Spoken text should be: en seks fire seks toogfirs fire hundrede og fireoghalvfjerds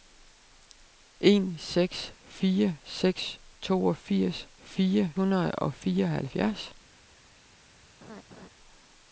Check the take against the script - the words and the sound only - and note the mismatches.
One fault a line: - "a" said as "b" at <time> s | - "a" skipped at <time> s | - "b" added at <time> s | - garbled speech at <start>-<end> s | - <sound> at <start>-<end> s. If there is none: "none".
- laugh at 8.0-8.5 s